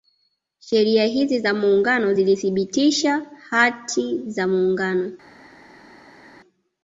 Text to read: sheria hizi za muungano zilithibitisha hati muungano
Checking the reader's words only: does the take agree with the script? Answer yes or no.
no